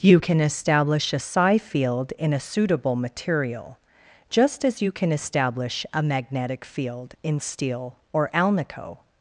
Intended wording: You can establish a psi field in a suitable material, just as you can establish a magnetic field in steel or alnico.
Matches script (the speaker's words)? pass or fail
pass